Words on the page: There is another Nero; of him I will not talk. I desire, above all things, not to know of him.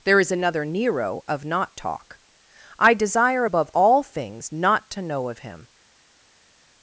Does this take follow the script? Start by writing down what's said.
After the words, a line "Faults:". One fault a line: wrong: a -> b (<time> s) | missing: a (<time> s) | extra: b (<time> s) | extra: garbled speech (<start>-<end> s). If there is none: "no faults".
There is another Nero; of not talk. I desire, above all things, not to know of him.
Faults:
missing: him I will (1.4 s)